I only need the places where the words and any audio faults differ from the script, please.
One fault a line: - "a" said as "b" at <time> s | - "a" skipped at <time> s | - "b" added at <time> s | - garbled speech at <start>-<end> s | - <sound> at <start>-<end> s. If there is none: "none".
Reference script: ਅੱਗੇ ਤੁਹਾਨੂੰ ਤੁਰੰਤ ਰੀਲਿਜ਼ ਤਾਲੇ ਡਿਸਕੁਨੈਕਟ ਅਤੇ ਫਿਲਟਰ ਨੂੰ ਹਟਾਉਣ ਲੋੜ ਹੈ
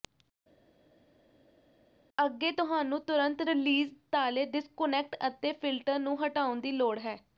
- "ਦੀ" added at 6.6 s